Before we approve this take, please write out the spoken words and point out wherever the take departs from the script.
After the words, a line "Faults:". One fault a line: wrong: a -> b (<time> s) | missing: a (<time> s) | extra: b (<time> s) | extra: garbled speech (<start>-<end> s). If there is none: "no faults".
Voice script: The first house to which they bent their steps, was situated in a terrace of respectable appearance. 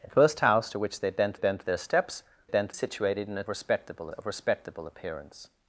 The first house to which they bent bent their steps, bent situated in a respectable of respectable appearance.
Faults:
extra: bent (1.3 s)
wrong: was -> bent (2.5 s)
wrong: terrace -> respectable (3.5 s)